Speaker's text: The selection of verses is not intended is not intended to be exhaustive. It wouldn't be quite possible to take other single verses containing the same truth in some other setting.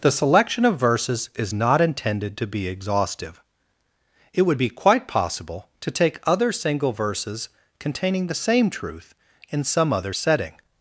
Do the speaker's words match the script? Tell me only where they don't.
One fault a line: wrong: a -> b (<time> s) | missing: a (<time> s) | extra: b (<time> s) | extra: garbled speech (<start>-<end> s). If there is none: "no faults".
missing: is not intended (2.4 s)
wrong: wouldn't -> would (4.4 s)